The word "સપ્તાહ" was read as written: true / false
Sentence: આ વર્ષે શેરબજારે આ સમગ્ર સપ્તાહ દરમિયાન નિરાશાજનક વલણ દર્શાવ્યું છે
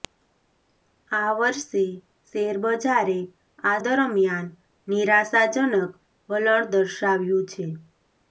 false